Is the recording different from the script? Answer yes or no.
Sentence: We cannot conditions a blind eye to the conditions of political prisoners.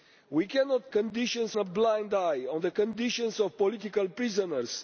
no